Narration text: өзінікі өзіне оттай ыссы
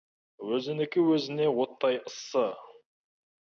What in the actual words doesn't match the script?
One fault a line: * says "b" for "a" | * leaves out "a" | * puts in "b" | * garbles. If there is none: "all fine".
all fine